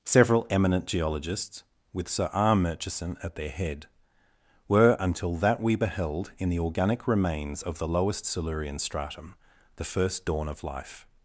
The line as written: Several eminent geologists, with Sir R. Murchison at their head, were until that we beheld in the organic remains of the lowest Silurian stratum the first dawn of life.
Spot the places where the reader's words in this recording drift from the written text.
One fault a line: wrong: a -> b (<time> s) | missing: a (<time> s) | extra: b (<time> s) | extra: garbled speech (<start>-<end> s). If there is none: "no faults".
no faults